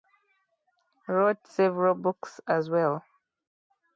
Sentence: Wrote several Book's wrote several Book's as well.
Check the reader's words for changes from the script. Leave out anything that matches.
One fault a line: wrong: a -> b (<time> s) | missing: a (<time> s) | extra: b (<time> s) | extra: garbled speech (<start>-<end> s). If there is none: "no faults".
missing: wrote several Book's (2.4 s)